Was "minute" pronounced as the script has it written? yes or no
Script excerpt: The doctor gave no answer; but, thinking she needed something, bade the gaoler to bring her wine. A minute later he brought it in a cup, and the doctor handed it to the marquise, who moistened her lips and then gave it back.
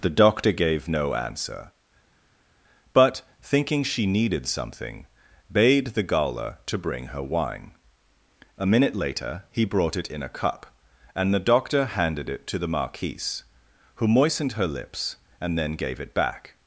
yes